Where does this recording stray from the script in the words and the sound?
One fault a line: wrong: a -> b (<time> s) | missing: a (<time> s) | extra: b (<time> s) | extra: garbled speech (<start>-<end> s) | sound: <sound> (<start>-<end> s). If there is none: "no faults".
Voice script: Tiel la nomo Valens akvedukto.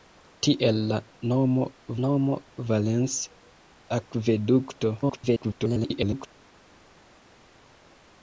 extra: nomo (2.1 s)
extra: garbled speech (5.0-6.3 s)